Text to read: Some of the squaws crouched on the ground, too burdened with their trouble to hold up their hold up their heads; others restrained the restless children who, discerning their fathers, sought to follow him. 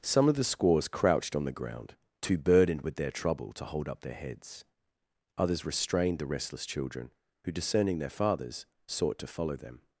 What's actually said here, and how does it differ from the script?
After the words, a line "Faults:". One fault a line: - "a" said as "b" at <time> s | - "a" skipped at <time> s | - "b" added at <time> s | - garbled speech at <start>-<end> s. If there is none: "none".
Some of the squaws crouched on the ground, too burdened with their trouble to hold up their heads; others restrained the restless children who, discerning their fathers, sought to follow them.
Faults:
- "hold up their" skipped at 4.2 s
- "him" said as "them" at 9.6 s